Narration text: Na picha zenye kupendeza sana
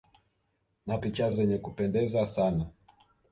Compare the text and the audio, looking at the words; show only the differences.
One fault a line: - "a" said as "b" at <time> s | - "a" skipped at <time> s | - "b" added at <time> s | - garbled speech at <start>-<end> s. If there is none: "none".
none